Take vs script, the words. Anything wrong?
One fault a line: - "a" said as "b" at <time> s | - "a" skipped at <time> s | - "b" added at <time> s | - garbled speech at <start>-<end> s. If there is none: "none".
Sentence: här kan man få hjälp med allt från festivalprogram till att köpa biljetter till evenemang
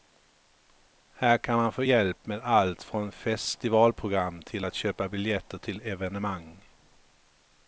none